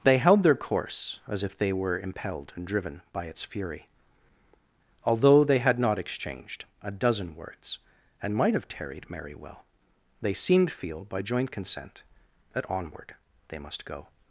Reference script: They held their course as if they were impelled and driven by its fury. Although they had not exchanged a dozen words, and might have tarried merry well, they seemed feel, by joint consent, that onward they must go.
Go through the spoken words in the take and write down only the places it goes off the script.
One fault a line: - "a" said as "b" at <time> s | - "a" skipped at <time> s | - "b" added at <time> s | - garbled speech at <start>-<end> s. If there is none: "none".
none